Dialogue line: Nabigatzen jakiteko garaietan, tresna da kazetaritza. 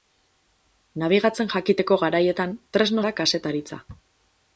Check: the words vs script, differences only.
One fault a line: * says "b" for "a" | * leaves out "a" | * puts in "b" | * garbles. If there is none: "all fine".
all fine